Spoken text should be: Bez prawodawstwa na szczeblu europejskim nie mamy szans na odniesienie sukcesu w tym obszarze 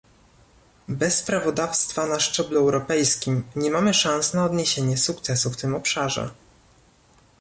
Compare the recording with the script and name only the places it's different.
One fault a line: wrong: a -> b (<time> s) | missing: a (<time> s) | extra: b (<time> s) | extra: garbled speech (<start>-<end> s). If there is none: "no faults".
no faults